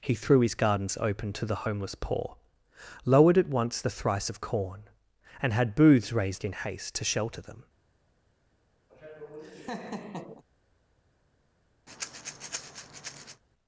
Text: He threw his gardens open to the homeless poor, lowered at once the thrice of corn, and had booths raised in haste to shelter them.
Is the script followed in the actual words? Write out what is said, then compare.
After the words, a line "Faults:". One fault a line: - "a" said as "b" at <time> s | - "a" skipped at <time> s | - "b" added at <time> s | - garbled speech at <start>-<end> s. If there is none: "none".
He threw his gardens open to the homeless poor, lowered at once the thrice of corn, and had booths raised in haste to shelter them.
Faults:
none